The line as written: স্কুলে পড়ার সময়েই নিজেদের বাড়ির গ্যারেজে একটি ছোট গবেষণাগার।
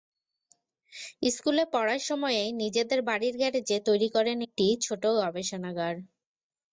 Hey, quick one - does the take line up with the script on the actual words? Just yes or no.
no